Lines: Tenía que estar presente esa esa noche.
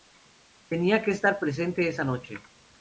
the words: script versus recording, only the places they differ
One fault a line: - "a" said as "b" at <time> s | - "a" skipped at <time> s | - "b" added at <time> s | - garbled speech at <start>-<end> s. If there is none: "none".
- "esa" skipped at 2.0 s